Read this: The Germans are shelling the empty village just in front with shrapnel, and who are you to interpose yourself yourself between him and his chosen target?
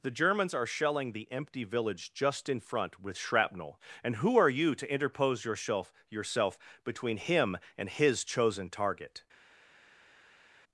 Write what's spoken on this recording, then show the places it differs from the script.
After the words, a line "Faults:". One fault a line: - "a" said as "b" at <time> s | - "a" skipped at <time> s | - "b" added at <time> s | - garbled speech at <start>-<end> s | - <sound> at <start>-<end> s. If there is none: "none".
The Germans are shelling the empty village just in front with shrapnel, and who are you to interpose yourself yourself between him and his chosen target?
Faults:
none